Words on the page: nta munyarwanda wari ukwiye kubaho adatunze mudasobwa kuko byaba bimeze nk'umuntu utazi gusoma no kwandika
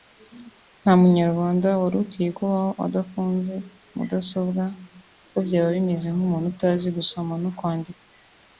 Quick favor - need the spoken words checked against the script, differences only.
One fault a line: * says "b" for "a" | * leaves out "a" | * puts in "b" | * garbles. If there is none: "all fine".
all fine